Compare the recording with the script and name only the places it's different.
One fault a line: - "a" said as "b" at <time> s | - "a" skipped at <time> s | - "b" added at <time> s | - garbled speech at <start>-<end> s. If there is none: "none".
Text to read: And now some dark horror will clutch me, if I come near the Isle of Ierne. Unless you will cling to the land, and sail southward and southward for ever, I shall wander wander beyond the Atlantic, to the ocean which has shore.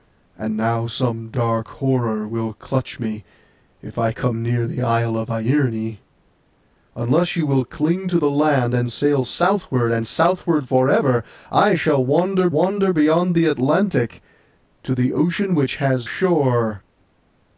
none